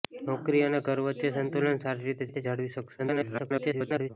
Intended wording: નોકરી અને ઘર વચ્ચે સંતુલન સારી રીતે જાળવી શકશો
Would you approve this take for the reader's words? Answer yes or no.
no